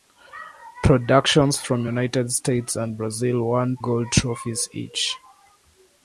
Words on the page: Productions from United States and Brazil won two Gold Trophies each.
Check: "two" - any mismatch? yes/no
yes